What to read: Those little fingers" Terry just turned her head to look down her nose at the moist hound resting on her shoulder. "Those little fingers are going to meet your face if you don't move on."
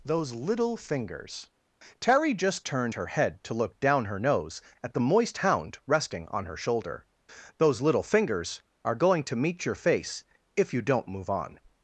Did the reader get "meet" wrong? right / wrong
right